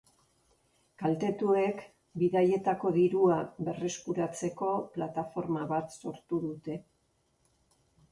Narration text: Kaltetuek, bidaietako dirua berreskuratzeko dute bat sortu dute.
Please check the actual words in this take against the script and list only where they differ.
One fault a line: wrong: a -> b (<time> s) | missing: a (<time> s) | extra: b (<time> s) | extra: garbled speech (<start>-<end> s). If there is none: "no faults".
wrong: dute -> plataforma (5.0 s)